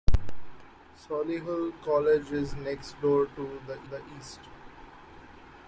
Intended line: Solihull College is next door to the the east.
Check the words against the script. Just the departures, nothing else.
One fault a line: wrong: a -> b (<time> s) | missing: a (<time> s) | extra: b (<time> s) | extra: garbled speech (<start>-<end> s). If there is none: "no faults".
no faults